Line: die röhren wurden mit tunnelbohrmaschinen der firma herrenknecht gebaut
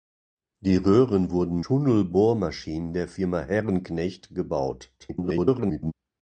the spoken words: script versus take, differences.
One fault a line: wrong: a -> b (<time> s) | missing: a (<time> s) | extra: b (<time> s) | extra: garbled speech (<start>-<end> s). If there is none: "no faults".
missing: mit (1.6 s)
extra: garbled speech (5.0-5.9 s)